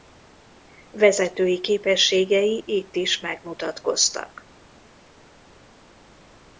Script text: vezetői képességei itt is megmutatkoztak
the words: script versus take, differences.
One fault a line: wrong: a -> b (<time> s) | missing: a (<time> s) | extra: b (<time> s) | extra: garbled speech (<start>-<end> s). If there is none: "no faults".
no faults